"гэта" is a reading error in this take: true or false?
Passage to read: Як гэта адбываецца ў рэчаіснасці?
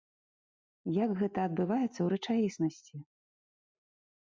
false